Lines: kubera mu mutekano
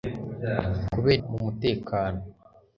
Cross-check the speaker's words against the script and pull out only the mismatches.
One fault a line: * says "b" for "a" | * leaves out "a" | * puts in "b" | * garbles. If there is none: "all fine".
all fine